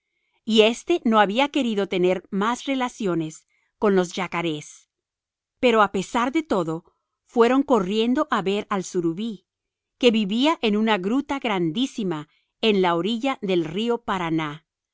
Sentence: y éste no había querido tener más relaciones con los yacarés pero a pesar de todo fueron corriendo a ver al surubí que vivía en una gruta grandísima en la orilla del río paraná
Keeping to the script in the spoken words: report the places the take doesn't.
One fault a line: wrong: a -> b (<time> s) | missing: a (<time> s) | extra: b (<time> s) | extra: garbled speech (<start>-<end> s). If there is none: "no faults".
no faults